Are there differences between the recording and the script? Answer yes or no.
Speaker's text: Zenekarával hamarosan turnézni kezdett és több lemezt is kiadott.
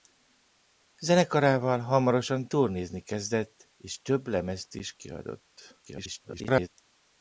yes